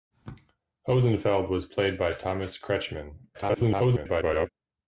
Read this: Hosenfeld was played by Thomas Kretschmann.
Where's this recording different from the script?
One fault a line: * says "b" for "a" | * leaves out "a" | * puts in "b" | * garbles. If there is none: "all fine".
* garbles